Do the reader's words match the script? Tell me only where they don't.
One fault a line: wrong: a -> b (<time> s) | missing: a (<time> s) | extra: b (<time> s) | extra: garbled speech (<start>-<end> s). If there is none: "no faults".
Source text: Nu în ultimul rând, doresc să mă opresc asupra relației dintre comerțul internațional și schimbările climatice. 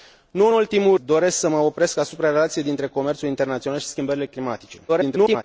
missing: rând (1.0 s)
extra: garbled speech (4.9-5.4 s)